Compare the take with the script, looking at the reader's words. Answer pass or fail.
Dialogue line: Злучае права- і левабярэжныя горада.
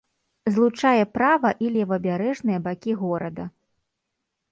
fail